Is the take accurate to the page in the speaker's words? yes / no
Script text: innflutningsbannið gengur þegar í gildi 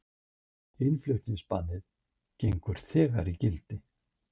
yes